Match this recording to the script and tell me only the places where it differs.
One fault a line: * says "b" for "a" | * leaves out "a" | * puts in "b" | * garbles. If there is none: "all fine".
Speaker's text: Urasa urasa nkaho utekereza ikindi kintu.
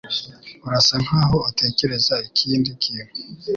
* leaves out "urasa"